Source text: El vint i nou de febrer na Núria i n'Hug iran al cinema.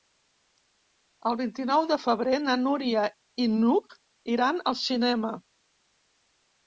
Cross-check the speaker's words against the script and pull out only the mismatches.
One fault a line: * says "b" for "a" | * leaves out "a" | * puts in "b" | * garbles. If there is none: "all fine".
all fine